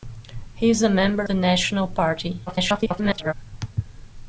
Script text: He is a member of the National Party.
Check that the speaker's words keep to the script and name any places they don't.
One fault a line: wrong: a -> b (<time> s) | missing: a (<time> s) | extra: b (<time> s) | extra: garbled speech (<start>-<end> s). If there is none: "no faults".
missing: of (1.3 s)
extra: garbled speech (2.5-3.3 s)